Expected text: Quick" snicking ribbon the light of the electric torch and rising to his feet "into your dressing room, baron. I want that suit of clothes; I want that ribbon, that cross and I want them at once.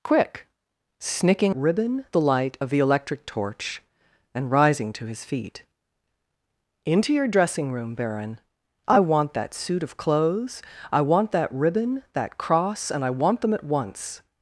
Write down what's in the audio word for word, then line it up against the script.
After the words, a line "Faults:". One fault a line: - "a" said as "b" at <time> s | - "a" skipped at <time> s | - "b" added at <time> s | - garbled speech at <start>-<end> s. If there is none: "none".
Quick" snicking ribbon the light of the electric torch and rising to his feet "into your dressing room, baron. I want that suit of clothes; I want that ribbon, that cross and I want them at once.
Faults:
none